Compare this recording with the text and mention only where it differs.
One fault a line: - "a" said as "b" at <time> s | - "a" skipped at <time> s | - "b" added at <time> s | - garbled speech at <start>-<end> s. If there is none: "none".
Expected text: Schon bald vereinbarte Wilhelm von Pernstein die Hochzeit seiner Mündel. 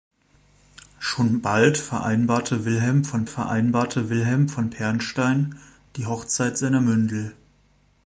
- "vereinbarte Wilhelm von" added at 3.2 s